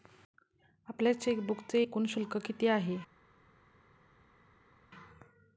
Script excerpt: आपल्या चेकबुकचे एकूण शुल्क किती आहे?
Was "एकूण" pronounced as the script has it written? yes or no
yes